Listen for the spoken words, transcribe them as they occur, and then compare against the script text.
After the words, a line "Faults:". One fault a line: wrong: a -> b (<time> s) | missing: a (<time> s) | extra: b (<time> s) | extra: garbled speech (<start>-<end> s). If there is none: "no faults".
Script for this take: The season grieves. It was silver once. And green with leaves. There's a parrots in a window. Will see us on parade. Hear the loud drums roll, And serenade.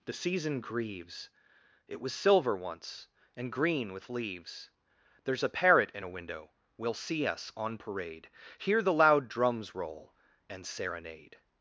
The season grieves. It was silver once. And green with leaves. There's a parrot in a window. Will see us on parade. Hear the loud drums roll, And serenade.
Faults:
wrong: parrots -> parrot (5.5 s)